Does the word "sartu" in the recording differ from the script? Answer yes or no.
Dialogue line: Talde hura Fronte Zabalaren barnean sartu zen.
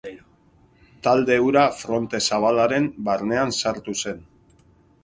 no